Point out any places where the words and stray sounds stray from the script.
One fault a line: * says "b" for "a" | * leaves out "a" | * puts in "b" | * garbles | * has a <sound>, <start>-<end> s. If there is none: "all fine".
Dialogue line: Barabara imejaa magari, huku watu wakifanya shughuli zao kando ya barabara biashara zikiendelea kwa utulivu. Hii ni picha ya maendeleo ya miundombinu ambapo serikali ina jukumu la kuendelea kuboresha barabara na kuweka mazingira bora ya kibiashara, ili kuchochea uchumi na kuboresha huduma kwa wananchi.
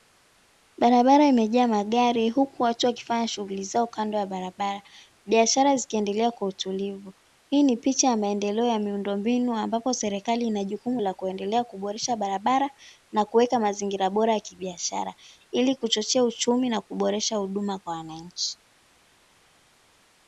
all fine